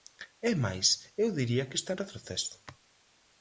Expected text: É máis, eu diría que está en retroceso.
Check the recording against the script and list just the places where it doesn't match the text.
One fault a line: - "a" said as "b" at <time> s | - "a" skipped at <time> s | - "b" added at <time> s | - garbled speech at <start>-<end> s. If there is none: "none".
none